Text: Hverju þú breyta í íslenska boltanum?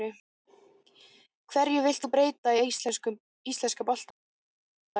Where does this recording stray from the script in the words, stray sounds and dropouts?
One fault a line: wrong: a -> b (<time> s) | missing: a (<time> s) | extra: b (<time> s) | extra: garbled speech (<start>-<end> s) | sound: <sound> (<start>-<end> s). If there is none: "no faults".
extra: vilt (1.9 s)